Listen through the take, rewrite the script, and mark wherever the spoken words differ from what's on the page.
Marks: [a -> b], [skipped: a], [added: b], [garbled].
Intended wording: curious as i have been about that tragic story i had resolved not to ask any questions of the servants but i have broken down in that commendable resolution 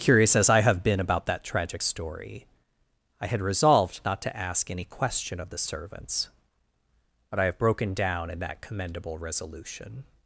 curious as i have been about that tragic story i had resolved not to ask any [questions -> question] of the servants but i have broken down in that commendable resolution